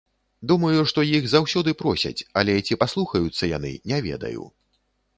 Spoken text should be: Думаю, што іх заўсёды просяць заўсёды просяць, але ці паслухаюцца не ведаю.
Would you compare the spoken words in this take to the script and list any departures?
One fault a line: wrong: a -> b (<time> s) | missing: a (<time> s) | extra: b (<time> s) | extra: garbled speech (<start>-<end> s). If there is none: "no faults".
missing: заўсёды просяць (2.2 s)
extra: яны (3.6 s)